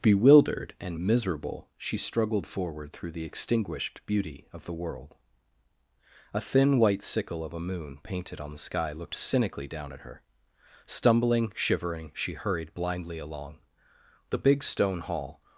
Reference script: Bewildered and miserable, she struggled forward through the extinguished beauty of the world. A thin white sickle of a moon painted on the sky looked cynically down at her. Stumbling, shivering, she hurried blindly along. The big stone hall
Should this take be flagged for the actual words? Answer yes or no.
no